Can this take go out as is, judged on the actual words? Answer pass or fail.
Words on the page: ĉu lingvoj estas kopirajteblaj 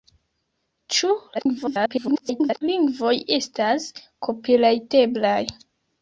fail